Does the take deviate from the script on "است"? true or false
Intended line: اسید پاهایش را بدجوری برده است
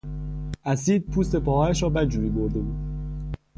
true